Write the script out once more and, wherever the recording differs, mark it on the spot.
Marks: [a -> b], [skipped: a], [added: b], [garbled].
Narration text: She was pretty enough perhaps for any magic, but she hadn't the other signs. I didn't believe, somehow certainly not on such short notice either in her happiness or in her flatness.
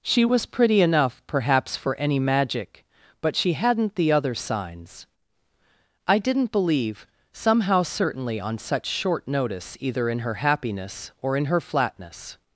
She was pretty enough perhaps for any magic, but she hadn't the other signs. I didn't believe, somehow certainly [skipped: not] on such short notice either in her happiness or in her flatness.